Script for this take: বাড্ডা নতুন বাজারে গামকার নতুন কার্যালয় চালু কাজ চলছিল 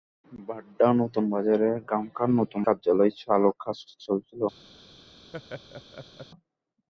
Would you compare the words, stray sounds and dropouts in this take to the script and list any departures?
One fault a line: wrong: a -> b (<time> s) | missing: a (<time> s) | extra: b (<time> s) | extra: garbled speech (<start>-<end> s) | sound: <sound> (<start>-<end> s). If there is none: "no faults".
sound: laugh (5.3-6.3 s)